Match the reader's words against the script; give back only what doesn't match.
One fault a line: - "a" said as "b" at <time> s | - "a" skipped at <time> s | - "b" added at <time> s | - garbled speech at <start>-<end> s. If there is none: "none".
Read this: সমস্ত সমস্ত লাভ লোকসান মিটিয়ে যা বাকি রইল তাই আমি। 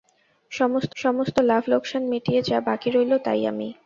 none